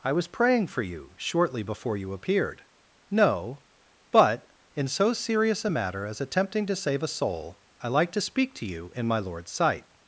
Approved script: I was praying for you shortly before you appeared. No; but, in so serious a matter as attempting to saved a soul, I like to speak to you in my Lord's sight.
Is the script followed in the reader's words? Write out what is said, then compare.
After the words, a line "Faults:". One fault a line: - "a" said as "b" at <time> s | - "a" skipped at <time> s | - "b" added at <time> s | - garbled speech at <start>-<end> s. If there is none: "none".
I was praying for you shortly before you appeared. No; but, in so serious a matter as attempting to save a soul, I like to speak to you in my Lord's sight.
Faults:
- "saved" said as "save" at 6.8 s